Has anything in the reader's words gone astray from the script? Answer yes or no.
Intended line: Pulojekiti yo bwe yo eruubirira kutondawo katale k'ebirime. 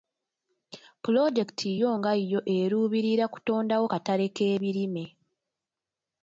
yes